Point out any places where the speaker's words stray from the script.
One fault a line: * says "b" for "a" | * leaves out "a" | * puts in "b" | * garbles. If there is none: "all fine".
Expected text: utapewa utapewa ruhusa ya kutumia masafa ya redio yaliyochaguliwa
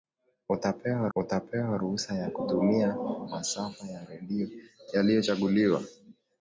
all fine